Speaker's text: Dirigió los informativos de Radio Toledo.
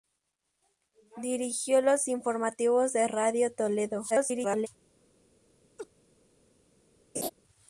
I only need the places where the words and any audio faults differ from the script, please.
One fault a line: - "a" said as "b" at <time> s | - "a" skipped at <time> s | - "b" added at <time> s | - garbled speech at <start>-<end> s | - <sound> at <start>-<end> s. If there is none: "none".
- garbled speech at 4.1-4.7 s
- laugh at 5.8-5.9 s
- laugh at 7.1-7.3 s